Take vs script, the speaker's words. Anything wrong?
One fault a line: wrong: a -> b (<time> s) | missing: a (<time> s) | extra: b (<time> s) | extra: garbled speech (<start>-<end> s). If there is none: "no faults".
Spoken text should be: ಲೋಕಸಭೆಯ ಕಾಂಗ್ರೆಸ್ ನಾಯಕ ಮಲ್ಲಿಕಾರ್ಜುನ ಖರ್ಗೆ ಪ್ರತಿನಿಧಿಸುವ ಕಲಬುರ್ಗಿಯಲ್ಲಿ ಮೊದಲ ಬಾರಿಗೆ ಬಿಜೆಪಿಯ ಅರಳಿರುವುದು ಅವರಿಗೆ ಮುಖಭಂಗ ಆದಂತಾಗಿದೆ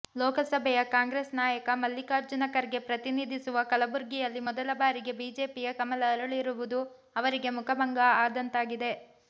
extra: ಕಮಲ (5.8 s)